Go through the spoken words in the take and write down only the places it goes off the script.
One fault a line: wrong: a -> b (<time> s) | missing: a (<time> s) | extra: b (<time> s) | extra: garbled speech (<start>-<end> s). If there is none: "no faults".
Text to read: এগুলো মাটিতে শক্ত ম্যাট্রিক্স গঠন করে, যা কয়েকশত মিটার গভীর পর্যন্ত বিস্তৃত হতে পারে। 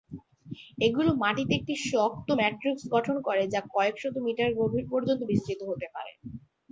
extra: একটি (1.6 s)